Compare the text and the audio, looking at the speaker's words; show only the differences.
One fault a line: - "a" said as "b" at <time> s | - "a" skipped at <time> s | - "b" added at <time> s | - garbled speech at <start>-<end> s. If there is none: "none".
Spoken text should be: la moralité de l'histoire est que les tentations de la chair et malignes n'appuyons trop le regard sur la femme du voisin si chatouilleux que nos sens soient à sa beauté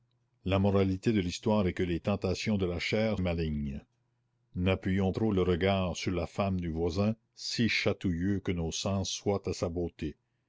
none